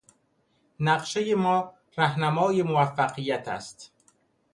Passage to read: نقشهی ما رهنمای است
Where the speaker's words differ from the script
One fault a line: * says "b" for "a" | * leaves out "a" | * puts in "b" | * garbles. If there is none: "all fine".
* puts in "موفقیت"